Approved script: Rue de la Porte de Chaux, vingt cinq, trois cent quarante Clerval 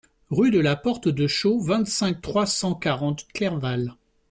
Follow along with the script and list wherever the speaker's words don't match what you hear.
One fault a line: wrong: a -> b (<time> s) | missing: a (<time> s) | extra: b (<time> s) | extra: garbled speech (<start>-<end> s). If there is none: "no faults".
no faults